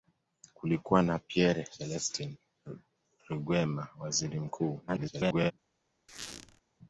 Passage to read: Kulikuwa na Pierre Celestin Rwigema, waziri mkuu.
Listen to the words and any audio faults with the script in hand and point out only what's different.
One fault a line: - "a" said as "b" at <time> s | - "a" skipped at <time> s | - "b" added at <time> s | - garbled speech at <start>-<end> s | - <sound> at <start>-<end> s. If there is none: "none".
- garbled speech at 4.9-5.5 s
- squeak at 6.1-6.6 s